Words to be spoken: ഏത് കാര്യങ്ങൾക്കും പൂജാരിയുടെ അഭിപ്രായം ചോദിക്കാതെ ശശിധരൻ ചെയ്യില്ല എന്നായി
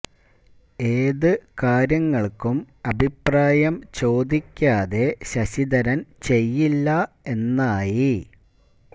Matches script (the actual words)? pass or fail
fail